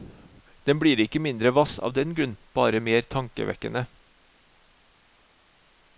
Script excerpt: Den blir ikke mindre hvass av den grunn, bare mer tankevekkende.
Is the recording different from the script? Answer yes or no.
no